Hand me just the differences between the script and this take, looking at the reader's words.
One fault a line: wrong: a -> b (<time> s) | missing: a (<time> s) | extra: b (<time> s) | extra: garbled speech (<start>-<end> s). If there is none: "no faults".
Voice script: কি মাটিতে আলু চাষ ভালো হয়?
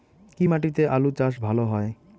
no faults